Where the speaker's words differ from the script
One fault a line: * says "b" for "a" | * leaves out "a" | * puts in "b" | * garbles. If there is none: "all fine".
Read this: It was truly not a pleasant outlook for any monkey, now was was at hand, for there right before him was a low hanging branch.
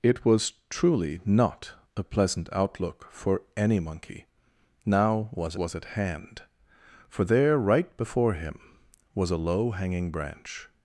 all fine